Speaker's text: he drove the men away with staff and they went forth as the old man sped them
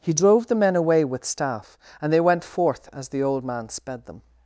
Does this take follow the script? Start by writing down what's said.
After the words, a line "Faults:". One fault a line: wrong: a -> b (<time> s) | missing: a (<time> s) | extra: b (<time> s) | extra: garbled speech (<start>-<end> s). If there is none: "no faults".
he drove the men away with staff and they went forth as the old man sped them
Faults:
no faults